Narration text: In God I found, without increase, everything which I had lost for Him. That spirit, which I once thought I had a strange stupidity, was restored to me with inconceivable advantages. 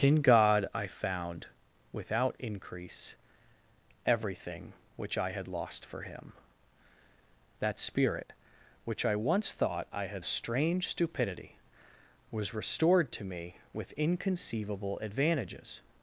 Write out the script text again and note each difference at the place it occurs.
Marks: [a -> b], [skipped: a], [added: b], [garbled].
In God I found, without increase, everything which I had lost for Him. That spirit, which I once thought I had a strange stupidity, was restored to me with inconceivable advantages.